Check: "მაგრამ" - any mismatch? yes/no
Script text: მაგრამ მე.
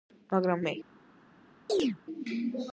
no